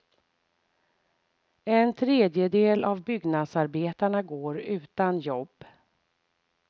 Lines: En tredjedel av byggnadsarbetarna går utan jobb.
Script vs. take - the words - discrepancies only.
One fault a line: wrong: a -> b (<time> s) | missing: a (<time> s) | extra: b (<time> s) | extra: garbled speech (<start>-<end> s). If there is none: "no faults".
no faults